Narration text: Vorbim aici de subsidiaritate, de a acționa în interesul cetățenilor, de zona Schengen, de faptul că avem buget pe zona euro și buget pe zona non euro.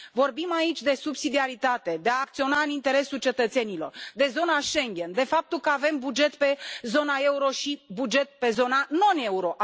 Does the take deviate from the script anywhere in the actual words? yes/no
no